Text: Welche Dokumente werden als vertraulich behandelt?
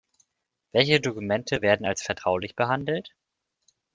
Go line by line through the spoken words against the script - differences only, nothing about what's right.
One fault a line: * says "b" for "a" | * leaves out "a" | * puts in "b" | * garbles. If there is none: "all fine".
all fine